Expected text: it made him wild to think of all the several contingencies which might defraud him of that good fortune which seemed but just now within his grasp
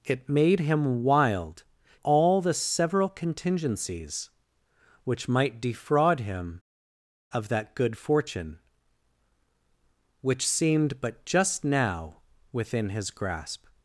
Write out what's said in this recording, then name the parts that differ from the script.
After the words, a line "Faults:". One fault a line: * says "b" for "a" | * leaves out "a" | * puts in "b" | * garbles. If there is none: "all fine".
it made him wild all the several contingencies which might defraud him of that good fortune which seemed but just now within his grasp
Faults:
* leaves out "to think of"